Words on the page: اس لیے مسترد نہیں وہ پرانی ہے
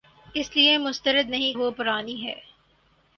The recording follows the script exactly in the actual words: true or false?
true